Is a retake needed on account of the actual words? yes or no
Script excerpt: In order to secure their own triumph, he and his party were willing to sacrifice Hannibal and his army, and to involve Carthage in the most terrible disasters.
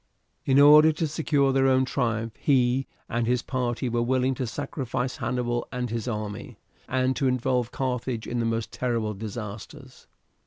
no